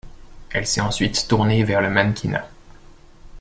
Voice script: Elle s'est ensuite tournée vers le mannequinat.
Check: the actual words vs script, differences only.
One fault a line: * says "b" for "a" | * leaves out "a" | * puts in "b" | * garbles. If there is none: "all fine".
all fine